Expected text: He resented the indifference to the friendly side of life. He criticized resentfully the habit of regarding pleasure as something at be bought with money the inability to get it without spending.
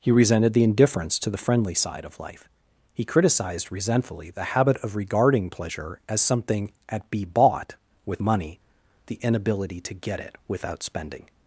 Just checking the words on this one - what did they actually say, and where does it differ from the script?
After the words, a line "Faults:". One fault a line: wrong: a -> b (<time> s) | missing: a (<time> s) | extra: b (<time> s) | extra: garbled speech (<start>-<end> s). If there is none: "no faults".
He resented the indifference to the friendly side of life. He criticized resentfully the habit of regarding pleasure as something at be bought with money the inability to get it without spending.
Faults:
no faults